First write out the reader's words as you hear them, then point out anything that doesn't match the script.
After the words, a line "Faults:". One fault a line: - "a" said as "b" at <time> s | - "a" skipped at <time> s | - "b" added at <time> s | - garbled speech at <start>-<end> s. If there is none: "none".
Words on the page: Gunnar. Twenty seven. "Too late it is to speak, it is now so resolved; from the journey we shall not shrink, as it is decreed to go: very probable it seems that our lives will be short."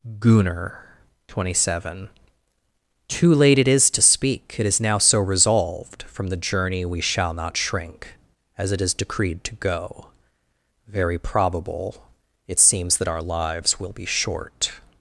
Gunnar. Twenty seven. "Too late it is to speak, it is now so resolved; from the journey we shall not shrink, as it is decreed to go: very probable it seems that our lives will be short."
Faults:
none